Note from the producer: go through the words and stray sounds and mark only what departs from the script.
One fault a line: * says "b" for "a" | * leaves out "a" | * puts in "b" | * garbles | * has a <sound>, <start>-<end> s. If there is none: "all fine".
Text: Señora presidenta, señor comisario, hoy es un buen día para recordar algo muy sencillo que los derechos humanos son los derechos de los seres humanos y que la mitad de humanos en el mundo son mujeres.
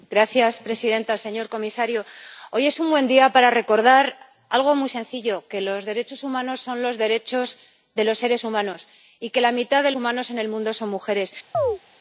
* has a chirp, 11.5-11.8 s